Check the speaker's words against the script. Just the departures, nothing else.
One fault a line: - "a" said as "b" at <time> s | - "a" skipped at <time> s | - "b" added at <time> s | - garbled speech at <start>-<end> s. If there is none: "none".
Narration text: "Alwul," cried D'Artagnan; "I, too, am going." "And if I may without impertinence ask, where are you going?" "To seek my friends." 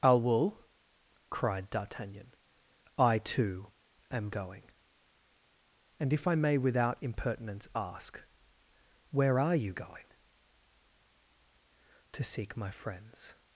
none